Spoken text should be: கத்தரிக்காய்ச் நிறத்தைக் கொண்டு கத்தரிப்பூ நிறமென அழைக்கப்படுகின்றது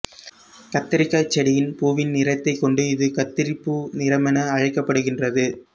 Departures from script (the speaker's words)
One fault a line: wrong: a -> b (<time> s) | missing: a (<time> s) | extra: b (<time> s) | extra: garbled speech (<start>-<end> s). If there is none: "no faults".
extra: செடியின் பூவின் (1.4 s)
extra: இது (2.9 s)